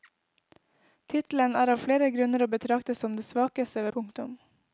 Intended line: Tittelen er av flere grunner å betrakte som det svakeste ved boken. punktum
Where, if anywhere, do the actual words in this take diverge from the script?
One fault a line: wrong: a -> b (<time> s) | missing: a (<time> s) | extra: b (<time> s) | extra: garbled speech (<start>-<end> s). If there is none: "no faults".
missing: ved boken (3.9 s)